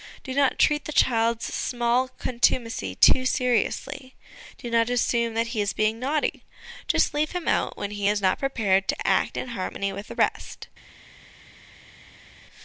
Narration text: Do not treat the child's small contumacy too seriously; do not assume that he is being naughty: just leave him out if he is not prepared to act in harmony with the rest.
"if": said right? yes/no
no